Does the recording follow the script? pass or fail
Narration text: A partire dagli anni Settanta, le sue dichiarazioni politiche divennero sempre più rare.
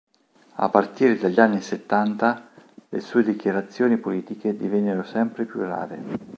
pass